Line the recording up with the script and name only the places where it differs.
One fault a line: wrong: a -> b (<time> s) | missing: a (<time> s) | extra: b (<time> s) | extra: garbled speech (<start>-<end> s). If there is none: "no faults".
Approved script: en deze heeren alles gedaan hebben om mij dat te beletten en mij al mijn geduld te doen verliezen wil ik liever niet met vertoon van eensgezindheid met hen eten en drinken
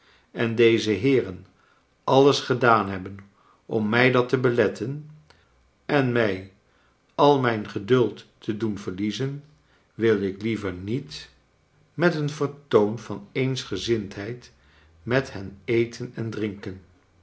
extra: een (12.2 s)